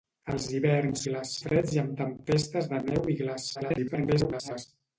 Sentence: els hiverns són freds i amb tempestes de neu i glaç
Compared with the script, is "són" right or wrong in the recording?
wrong